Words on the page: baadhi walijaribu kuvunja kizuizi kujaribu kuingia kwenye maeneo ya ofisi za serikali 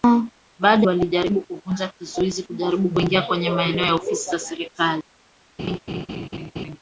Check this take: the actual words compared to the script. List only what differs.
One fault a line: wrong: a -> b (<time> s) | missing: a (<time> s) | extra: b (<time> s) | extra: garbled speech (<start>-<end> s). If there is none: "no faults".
no faults